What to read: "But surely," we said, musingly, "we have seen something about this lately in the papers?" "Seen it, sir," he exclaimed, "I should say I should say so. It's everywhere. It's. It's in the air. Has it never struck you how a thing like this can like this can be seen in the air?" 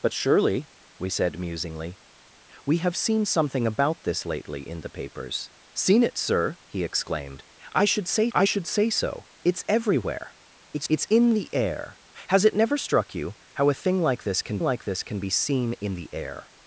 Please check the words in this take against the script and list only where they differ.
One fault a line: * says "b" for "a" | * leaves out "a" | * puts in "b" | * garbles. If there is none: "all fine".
all fine